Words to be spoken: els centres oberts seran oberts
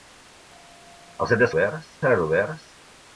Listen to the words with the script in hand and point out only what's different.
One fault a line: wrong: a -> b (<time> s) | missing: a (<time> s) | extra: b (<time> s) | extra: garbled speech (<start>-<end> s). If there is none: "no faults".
no faults